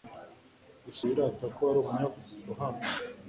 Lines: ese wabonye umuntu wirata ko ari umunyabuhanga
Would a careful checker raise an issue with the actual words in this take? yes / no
yes